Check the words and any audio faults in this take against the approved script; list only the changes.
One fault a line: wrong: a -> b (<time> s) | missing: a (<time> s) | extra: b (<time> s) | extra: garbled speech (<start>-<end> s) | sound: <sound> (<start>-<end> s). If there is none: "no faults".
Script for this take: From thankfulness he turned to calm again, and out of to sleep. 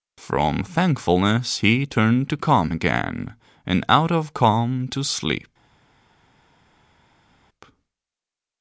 extra: calm (4.3 s)